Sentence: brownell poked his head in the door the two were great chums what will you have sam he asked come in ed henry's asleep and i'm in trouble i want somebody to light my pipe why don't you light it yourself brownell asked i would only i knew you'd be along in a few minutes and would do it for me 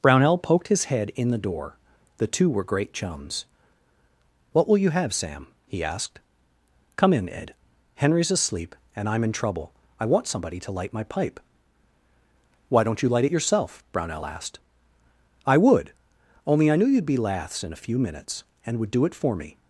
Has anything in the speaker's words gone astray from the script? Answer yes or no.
yes